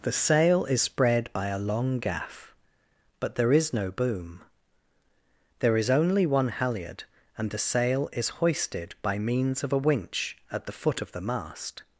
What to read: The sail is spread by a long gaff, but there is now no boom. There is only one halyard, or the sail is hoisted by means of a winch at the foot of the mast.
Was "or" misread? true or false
true